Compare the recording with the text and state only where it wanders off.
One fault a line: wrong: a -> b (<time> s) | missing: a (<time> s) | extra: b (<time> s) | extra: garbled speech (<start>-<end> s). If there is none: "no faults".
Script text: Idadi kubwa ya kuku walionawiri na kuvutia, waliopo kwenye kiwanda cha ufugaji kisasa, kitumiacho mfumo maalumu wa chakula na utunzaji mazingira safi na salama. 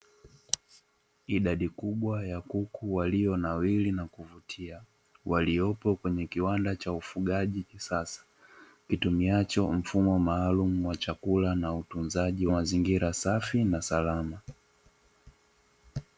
no faults